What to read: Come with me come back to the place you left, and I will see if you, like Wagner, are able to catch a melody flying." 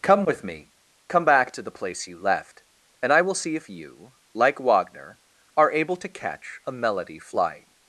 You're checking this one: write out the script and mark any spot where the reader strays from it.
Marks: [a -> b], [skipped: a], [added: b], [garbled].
Come with me come back to the place you left, and I will see if you, like Wagner, are able to catch a melody flying."